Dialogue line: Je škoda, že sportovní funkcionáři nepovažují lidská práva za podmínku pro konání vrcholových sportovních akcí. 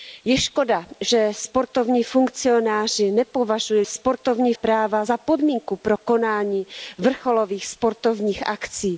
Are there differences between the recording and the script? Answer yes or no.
yes